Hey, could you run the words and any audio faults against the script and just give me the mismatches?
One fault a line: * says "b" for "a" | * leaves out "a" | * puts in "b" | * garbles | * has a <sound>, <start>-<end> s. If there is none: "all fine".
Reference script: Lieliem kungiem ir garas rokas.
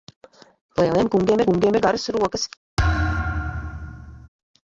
* puts in "kungiem"
* has a thud, 2.8-4.3 s